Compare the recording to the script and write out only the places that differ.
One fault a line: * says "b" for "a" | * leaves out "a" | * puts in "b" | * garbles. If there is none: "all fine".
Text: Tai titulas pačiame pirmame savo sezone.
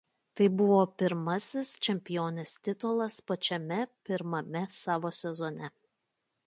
* puts in "buvo pirmasis čempionės"